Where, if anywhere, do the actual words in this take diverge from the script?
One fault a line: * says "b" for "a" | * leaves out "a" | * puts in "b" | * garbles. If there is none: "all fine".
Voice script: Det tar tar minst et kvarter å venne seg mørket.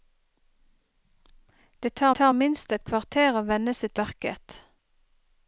all fine